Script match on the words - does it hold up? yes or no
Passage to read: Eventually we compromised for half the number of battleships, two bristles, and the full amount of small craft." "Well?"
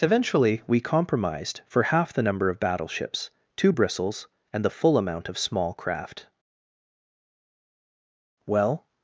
yes